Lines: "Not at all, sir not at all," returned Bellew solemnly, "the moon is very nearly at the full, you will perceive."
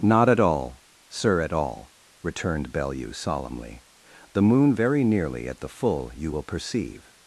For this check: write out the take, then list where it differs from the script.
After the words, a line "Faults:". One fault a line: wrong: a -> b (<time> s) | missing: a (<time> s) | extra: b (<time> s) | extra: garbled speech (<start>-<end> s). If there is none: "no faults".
"Not at all, sir at all," returned Bellew solemnly, "the moon very nearly at the full, you will perceive."
Faults:
missing: not (1.4 s)
missing: is (4.7 s)